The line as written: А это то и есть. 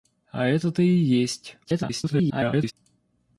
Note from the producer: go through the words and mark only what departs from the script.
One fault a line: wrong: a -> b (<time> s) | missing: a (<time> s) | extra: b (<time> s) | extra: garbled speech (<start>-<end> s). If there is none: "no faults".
extra: garbled speech (1.6-2.7 s)